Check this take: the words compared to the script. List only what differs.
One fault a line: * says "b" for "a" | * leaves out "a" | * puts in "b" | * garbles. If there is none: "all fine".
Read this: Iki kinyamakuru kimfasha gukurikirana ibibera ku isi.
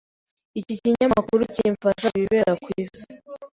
* leaves out "gukurikirana"